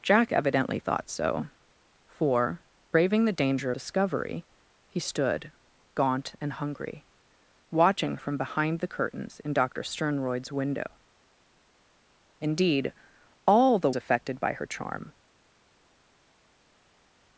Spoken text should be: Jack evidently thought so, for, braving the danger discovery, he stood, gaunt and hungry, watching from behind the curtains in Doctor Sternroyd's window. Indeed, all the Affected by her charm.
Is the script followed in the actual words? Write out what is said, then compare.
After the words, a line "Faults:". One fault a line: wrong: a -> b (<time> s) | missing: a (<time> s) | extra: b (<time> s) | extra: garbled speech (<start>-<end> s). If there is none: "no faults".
Jack evidently thought so, for, braving the danger discovery, he stood, gaunt and hungry, watching from behind the curtains in Doctor Sternroyd's window. Indeed, all the Affected by her charm.
Faults:
no faults